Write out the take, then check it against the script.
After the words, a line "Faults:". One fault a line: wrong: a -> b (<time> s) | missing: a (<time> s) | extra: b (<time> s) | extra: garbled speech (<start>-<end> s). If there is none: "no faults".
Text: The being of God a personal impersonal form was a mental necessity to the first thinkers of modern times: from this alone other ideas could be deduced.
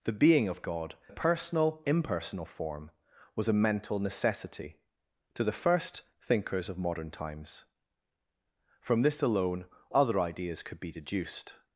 The being of God a personal impersonal form was a mental necessity to the first thinkers of modern times: from this alone other ideas could be deduced.
Faults:
no faults